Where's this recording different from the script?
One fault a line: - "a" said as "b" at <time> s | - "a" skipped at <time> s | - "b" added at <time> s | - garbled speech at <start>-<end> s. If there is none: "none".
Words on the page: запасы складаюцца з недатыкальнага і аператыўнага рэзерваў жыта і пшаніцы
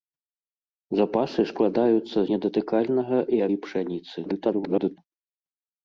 - "з" skipped at 2.2 s
- "аператыўнага рэзерваў жыта" skipped at 3.4 s
- garbled speech at 4.2-5.0 s